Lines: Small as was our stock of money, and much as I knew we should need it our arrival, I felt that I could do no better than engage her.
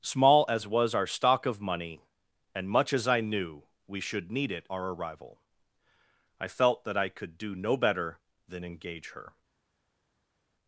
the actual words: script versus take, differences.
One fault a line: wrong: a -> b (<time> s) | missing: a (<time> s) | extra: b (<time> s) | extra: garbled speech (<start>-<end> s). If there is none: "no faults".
no faults